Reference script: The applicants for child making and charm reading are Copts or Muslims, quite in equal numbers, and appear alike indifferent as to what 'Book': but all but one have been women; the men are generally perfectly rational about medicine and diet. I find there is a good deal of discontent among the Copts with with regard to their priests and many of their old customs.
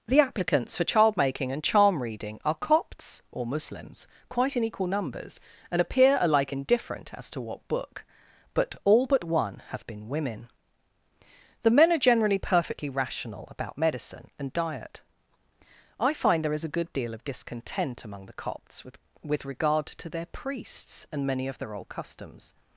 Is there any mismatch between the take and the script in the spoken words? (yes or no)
no